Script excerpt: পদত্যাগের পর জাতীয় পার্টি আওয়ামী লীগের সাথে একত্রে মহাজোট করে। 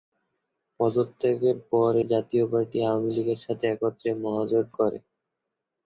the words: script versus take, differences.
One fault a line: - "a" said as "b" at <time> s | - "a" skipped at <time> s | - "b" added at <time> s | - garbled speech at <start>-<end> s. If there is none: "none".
none